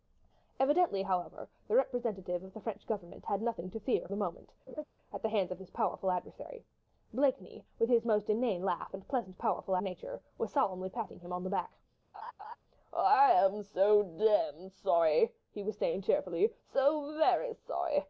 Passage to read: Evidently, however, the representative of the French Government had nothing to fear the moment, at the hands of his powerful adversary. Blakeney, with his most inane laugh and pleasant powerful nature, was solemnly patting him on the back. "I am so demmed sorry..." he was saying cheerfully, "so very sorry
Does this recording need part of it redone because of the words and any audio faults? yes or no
yes